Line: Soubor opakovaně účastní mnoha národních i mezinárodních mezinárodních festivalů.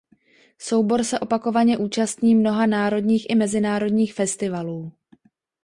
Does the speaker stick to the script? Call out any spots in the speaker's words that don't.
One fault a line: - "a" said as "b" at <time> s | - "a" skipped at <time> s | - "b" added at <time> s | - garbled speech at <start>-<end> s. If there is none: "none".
- "se" added at 1.0 s
- "mezinárodních" skipped at 4.1 s